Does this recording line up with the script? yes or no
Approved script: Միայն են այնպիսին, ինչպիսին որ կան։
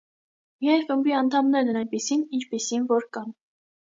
no